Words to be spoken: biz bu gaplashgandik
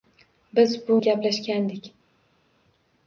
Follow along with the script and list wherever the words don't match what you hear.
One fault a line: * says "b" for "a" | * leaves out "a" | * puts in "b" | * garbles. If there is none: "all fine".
all fine